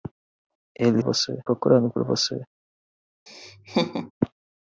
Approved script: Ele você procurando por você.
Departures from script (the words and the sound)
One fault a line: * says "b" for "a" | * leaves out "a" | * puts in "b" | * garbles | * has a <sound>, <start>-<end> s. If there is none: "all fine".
* has a laugh, 3.3-4.1 s